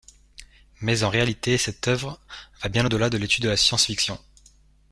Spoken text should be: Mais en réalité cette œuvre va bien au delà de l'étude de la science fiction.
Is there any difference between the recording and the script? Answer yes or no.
no